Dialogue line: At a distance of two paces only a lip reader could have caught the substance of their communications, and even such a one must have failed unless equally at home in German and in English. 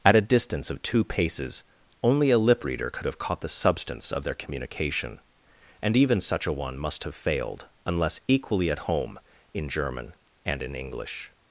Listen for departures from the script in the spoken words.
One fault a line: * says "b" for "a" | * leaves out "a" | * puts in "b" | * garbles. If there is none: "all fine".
* says "communication" for "communications"